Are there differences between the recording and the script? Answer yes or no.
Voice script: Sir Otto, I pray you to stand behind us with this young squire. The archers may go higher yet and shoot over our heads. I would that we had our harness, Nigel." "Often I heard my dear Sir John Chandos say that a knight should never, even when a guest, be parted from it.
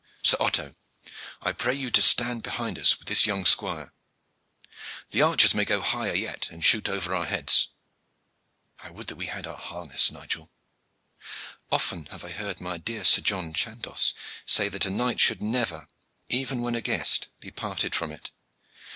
yes